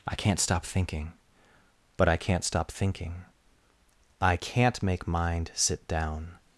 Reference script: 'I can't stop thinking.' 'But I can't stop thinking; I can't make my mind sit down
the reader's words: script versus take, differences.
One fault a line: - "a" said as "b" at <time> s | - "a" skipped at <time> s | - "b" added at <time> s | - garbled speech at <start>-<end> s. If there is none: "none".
- "my" skipped at 5.1 s